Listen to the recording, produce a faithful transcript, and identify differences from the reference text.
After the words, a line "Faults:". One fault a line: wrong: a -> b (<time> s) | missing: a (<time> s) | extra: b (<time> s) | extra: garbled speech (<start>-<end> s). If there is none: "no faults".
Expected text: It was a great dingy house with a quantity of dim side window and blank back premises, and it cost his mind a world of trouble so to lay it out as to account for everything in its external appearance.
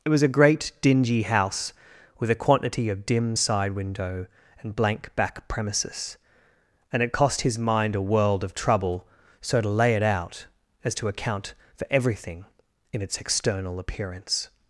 It was a great dingy house with a quantity of dim side window and blank back premises, and it cost his mind a world of trouble so to lay it out as to account for everything in its external appearance.
Faults:
no faults